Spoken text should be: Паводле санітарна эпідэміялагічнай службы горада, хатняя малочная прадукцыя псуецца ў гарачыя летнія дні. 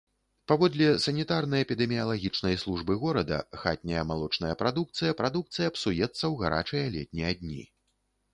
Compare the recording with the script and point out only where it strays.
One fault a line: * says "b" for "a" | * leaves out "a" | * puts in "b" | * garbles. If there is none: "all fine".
* puts in "прадукцыя"